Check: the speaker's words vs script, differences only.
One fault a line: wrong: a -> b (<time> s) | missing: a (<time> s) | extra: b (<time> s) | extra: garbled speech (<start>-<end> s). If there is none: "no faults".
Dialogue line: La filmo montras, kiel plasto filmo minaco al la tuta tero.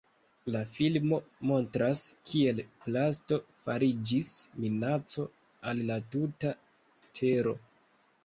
wrong: filmo -> fariĝis (3.7 s)